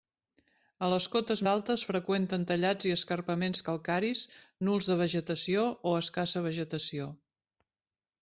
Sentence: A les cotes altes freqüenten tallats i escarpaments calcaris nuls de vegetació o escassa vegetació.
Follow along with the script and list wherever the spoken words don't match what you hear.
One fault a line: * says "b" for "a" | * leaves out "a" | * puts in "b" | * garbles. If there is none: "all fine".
all fine